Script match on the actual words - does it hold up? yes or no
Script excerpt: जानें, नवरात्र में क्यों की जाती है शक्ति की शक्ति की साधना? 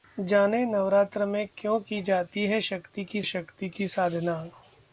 yes